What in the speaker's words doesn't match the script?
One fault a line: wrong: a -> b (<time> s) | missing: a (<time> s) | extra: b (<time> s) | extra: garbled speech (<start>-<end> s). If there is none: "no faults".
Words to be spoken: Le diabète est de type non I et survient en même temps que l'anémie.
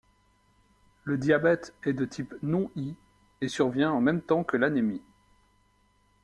no faults